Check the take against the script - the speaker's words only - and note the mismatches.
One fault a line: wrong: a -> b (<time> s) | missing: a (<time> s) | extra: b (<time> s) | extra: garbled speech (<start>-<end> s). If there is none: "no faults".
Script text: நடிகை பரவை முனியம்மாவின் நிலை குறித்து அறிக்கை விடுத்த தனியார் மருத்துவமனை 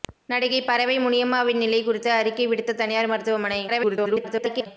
extra: garbled speech (3.7-4.7 s)